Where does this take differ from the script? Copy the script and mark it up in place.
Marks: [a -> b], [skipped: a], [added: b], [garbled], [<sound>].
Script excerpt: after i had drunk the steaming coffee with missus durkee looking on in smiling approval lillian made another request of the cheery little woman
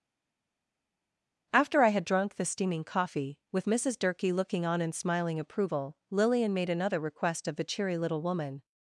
after i had drunk the steaming coffee with missus durkee looking on in smiling approval lillian made another request of the cheery little woman